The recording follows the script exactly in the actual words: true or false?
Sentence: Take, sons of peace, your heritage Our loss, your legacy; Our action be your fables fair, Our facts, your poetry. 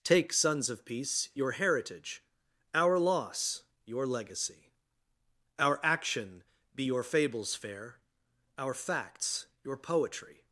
true